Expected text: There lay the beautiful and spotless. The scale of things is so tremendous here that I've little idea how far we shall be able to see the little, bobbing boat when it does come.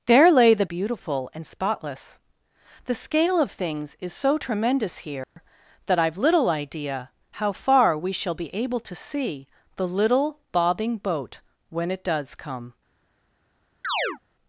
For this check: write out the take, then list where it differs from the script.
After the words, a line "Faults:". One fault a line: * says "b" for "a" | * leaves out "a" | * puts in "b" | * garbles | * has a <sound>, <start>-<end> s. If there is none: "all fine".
There lay the beautiful and spotless. The scale of things is so tremendous here that I've little idea how far we shall be able to see the little, bobbing boat when it does come.
Faults:
* has a dropout, 5.2-5.4 s
* has a chirp, 13.8-14.2 s